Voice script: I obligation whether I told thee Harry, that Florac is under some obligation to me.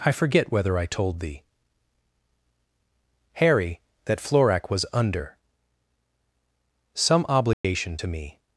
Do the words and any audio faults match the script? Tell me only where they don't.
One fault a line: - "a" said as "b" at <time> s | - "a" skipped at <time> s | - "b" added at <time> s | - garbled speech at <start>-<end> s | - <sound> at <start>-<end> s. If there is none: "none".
- "obligation" said as "forget" at 0.1 s
- "is" said as "was" at 4.7 s
- dropout at 7.5-7.6 s